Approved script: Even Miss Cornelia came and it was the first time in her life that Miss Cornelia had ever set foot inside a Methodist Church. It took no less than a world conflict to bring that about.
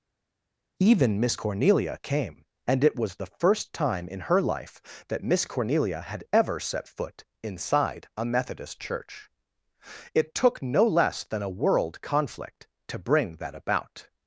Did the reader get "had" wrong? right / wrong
right